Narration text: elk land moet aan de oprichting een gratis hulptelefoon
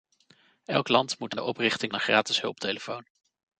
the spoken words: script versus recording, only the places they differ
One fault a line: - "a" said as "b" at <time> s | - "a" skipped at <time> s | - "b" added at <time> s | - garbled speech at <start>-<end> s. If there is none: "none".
none